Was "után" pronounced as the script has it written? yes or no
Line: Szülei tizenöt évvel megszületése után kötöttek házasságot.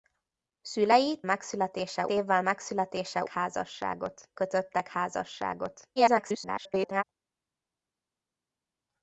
no